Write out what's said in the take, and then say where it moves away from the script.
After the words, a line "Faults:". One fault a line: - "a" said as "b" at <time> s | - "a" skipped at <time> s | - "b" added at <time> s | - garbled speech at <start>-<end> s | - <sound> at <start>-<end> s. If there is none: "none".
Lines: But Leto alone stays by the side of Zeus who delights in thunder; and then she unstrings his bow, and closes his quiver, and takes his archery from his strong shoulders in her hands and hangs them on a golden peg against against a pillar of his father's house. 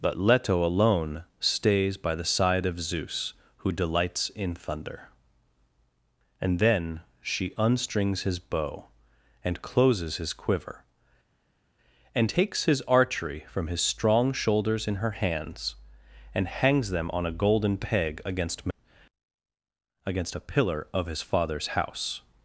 But Leto alone stays by the side of Zeus who delights in thunder; and then she unstrings his bow, and closes his quiver, and takes his archery from his strong shoulders in her hands and hangs them on a golden peg against against a pillar of his father's house.
Faults:
none